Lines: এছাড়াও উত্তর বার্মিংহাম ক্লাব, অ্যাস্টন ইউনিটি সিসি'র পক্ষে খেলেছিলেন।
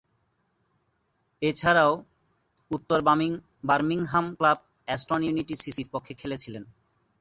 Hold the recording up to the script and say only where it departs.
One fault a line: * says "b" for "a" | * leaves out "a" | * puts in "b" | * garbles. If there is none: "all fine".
all fine